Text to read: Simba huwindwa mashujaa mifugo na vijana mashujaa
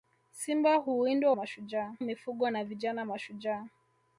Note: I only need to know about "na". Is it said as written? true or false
true